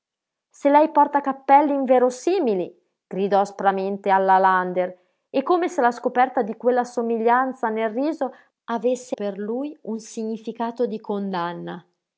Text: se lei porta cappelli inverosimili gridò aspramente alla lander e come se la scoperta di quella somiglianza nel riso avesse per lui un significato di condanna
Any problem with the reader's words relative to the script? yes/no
no